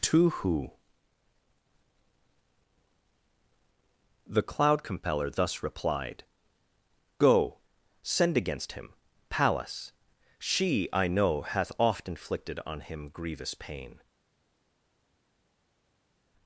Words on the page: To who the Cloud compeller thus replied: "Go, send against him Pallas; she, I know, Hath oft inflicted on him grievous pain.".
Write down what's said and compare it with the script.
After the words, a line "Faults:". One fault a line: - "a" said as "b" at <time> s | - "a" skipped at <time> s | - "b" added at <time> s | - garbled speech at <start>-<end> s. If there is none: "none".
To who the Cloud compeller thus replied: "Go, send against him Pallas; she, I know, Hath oft inflicted on him grievous pain.".
Faults:
none